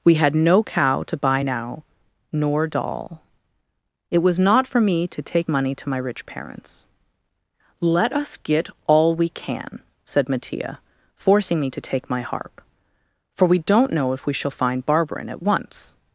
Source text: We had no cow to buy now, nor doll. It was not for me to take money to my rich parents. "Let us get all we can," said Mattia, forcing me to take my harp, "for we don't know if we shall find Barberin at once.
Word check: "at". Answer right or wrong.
right